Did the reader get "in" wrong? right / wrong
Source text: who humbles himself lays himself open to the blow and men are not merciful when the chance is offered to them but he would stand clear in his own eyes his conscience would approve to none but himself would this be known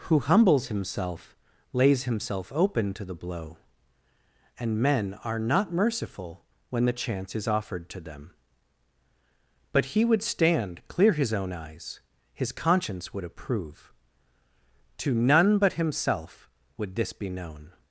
wrong